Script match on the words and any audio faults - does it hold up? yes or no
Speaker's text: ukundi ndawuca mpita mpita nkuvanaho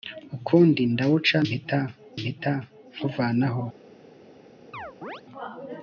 no